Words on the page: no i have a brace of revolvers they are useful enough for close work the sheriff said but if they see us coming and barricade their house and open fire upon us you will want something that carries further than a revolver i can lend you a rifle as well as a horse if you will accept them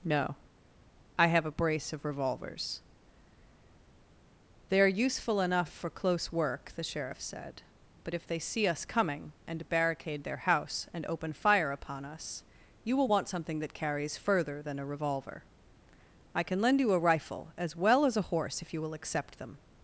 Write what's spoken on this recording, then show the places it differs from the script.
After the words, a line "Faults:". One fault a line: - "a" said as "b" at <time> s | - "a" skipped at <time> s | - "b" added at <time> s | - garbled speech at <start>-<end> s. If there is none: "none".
no i have a brace of revolvers they are useful enough for close work the sheriff said but if they see us coming and barricade their house and open fire upon us you will want something that carries further than a revolver i can lend you a rifle as well as a horse if you will accept them
Faults:
none